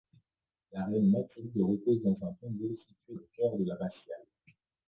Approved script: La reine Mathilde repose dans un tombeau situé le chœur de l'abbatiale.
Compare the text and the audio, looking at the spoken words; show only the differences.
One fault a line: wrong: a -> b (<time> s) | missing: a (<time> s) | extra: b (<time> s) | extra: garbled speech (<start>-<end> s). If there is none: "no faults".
no faults